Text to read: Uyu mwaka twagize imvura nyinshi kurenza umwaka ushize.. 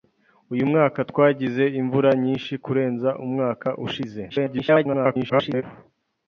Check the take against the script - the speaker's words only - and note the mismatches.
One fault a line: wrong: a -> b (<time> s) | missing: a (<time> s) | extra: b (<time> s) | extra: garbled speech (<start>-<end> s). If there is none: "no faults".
extra: garbled speech (4.3-5.6 s)